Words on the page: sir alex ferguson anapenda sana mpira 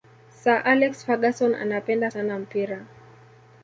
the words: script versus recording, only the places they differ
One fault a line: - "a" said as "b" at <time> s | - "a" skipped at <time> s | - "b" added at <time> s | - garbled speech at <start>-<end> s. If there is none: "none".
none